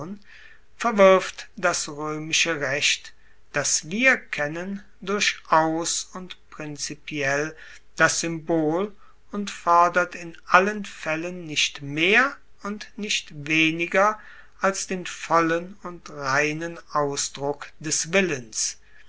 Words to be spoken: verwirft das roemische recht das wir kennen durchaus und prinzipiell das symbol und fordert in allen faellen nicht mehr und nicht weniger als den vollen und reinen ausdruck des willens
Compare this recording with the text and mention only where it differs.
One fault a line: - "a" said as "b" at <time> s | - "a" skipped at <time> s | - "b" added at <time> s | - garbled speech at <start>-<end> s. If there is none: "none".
none